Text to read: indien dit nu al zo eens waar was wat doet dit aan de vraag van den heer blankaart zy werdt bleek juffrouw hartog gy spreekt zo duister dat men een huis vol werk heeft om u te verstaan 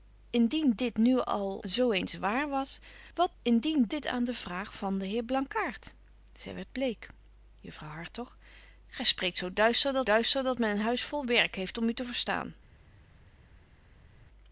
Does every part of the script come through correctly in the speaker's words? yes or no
no